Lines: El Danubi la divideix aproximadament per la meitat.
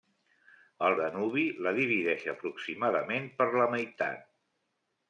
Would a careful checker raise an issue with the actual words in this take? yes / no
no